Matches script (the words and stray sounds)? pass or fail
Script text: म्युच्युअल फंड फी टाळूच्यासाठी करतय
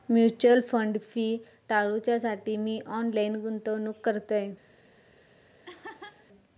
fail